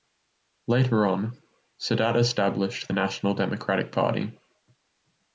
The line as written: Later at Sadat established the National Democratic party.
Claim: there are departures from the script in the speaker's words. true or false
true